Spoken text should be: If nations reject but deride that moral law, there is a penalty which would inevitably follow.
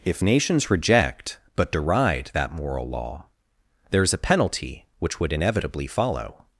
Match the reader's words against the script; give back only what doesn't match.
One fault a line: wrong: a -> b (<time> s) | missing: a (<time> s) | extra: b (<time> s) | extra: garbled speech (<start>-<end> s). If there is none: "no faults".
no faults